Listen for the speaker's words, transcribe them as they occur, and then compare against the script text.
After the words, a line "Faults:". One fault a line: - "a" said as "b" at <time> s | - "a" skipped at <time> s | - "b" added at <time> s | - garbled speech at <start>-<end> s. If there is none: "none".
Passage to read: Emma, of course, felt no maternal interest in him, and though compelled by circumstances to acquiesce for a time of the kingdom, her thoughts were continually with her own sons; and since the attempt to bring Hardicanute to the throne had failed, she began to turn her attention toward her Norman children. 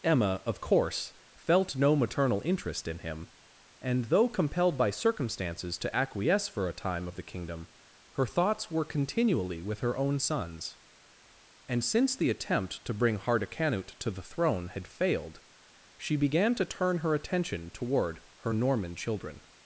Emma, of course, felt no maternal interest in him, and though compelled by circumstances to acquiesce for a time of the kingdom, her thoughts were continually with her own sons; and since the attempt to bring Hardicanute to the throne had failed, she began to turn her attention toward her Norman children.
Faults:
none